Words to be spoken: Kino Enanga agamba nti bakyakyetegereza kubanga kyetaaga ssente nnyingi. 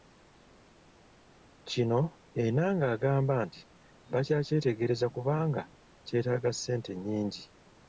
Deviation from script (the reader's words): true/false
false